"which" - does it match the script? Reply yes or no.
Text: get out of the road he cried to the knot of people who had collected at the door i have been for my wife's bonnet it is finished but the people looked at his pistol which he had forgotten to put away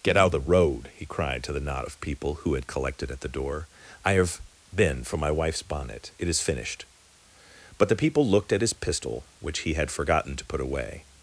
yes